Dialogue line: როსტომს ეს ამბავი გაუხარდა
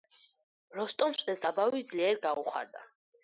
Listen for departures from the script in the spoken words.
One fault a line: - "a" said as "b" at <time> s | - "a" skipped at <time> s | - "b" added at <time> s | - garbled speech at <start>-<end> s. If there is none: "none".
- "ძლიერ" added at 1.9 s